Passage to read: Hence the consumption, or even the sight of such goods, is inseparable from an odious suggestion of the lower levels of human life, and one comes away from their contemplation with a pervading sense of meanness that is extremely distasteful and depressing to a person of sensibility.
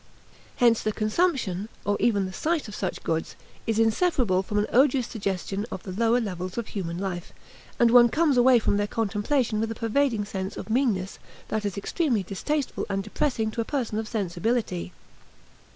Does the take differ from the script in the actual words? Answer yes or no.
no